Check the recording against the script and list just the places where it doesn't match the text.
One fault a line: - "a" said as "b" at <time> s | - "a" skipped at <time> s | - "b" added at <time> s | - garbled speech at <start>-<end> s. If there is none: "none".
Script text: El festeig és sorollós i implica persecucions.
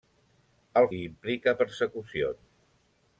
- "festeig és sorollós" skipped at 0.9 s